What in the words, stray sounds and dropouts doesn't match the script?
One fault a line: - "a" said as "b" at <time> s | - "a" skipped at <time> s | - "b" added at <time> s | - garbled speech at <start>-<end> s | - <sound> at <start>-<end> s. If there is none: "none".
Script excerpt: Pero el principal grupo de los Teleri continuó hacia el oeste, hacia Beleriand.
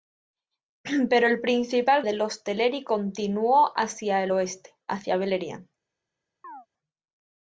- "grupo" skipped at 2.0 s
- chirp at 6.4-6.7 s